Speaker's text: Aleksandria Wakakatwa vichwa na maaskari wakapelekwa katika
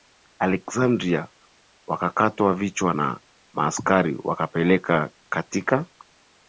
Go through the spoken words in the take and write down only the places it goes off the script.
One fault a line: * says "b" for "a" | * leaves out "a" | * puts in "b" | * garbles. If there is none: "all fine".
all fine